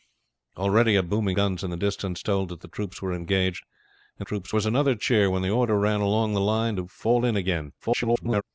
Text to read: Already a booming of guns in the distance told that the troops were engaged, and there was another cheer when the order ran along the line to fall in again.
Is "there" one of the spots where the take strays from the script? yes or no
yes